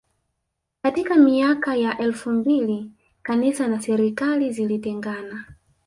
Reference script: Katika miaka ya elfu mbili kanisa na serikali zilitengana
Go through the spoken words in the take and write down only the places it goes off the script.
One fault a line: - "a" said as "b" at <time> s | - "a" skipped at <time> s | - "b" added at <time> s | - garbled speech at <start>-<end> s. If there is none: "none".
none